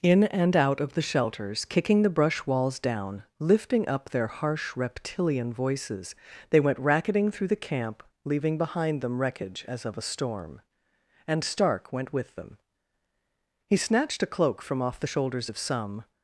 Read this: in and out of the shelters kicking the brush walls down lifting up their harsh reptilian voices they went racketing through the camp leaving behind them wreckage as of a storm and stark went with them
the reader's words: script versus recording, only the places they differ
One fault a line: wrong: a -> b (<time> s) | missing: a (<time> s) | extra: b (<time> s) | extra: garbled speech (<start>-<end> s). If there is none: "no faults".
extra: he snatched a cloak from off the shoulders of some (13.7 s)